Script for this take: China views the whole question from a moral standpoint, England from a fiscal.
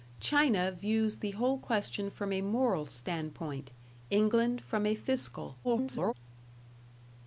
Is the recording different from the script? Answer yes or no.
yes